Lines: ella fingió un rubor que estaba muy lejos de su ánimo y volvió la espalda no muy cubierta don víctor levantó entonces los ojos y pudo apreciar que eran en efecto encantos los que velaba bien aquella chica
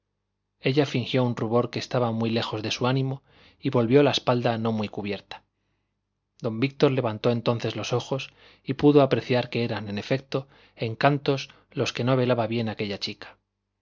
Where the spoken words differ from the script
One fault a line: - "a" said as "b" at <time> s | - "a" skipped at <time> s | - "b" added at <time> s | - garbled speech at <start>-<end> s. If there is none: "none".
- "no" added at 12.0 s